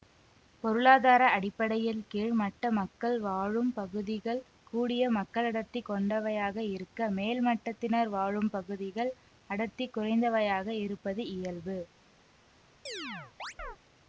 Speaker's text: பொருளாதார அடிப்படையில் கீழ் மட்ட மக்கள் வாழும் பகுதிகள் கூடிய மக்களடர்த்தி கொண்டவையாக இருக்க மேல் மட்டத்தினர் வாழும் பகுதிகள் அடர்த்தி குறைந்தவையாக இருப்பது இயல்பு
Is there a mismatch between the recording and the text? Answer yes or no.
no